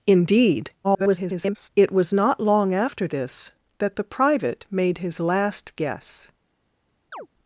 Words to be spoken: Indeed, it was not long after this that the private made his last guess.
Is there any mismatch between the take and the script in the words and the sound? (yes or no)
yes